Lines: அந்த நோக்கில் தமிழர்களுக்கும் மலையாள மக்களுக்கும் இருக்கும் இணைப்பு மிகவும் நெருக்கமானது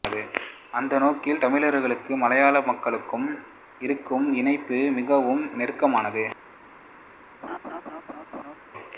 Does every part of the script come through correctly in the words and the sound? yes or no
no